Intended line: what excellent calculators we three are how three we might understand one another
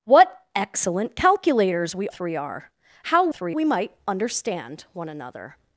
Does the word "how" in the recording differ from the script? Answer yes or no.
no